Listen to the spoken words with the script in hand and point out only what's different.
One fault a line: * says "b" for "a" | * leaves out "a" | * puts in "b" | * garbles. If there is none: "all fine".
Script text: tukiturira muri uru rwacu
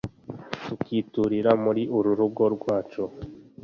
* puts in "rugo"